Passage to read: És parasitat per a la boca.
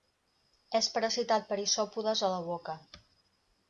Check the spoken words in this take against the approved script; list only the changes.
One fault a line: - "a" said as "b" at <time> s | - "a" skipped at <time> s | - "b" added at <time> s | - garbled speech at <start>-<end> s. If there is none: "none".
- "isòpodes" added at 1.7 s